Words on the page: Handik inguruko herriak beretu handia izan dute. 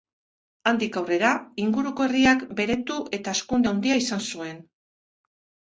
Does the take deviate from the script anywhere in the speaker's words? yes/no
yes